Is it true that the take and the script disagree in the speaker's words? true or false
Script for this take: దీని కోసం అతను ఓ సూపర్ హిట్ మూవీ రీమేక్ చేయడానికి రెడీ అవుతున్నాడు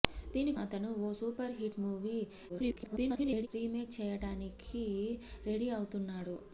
true